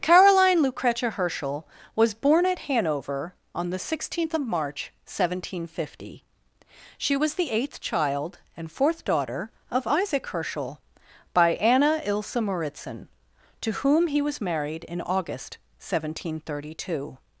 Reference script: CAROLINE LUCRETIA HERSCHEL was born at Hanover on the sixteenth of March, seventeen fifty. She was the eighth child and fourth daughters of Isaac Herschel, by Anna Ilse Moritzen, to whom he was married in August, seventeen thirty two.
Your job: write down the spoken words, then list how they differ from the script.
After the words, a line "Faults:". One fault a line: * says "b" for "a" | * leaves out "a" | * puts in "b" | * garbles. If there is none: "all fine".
CAROLINE LUCRETIA HERSCHEL was born at Hanover on the sixteenth of March, seventeen fifty. She was the eighth child and fourth daughter of Isaac Herschel, by Anna Ilse Moritzen, to whom he was married in August, seventeen thirty two.
Faults:
* says "daughter" for "daughters"